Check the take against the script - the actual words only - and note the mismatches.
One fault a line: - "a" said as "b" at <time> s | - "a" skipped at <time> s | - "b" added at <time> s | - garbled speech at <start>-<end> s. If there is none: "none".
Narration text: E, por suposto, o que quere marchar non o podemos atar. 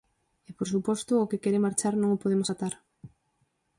none